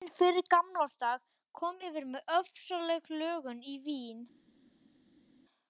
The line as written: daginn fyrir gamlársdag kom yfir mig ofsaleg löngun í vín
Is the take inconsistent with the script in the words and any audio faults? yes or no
no